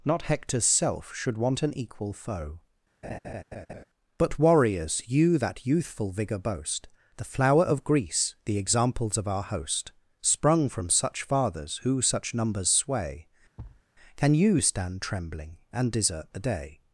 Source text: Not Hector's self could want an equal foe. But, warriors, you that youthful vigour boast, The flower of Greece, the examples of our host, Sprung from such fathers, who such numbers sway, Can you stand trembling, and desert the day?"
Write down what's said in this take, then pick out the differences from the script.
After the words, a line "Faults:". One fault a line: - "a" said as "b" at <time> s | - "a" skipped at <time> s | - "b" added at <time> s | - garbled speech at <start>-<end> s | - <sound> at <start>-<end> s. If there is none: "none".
Not Hector's self should want an equal foe. But, warriors, you that youthful vigour boast, The flower of Greece, the examples of our host, Sprung from such fathers, who such numbers sway, Can you stand trembling, and desert the day?"
Faults:
- "could" said as "should" at 1.1 s
- laugh at 3.0-3.8 s
- thud at 13.6-13.8 s